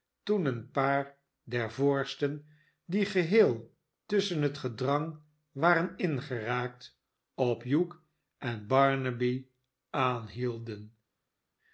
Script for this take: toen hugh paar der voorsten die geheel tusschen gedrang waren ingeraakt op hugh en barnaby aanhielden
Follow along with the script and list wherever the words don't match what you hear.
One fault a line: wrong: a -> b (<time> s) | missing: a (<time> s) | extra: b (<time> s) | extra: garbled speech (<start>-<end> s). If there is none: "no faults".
wrong: hugh -> een (0.5 s)
extra: het (4.4 s)